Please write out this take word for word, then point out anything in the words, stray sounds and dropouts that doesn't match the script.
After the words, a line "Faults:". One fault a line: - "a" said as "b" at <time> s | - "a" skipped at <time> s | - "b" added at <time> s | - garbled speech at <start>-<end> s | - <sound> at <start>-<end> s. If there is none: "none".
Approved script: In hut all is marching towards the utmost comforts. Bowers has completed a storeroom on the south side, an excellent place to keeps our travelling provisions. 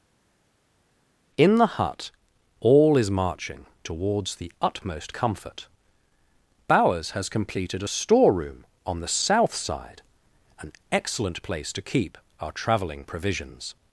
In the hut all is marching towards the utmost comfort. Bowers has completed a storeroom on the south side, an excellent place to keep our travelling provisions.
Faults:
- "the" added at 1.5 s
- "comforts" said as "comfort" at 5.1 s
- "keeps" said as "keep" at 11.8 s